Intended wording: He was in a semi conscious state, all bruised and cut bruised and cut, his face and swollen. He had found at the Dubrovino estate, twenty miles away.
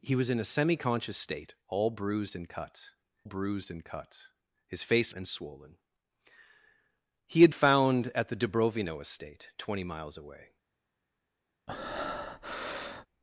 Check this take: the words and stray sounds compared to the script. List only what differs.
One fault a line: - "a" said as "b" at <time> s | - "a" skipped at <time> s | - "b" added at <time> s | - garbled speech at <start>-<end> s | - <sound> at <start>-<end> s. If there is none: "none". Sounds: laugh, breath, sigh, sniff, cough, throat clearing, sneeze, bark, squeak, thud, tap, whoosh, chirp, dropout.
- breath at 11.7-13.1 s